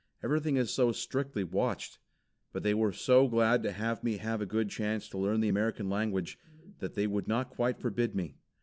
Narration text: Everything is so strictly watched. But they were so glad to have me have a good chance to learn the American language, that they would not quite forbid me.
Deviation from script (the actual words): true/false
false